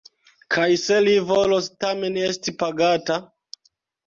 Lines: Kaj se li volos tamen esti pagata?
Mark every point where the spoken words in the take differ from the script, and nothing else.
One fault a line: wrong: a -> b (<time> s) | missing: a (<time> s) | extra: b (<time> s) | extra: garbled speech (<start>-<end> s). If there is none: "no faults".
no faults